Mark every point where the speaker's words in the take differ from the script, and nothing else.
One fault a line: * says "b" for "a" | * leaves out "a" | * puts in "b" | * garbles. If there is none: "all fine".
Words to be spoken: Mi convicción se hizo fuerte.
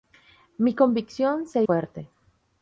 * leaves out "hizo"